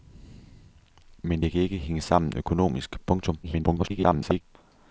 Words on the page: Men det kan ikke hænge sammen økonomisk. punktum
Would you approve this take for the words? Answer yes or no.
no